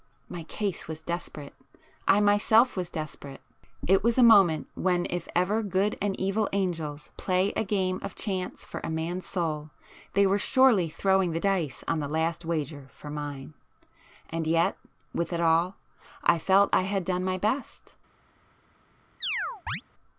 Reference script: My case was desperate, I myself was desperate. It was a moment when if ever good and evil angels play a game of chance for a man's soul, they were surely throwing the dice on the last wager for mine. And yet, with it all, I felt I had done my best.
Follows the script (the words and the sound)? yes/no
no